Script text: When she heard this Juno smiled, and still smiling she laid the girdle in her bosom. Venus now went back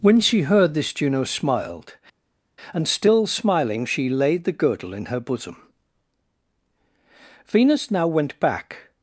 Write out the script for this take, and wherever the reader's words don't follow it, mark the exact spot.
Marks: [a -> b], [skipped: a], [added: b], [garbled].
When she heard this Juno smiled, and still smiling she laid the girdle in her bosom. Venus now went back